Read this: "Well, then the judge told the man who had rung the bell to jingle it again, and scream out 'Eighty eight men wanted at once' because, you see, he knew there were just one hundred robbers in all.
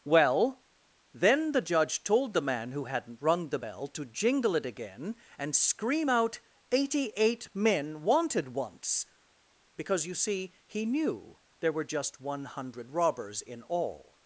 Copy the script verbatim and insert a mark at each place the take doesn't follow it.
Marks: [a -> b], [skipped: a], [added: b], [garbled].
"Well, then the judge told the man who [had -> hadn't] rung the bell to jingle it again, and scream out 'Eighty eight men wanted [skipped: at] once' because, you see, he knew there were just one hundred robbers in all.